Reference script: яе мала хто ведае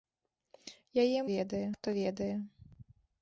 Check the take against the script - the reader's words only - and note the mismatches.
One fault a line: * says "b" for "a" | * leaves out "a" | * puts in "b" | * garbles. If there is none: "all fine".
* says "ведае" for "мала"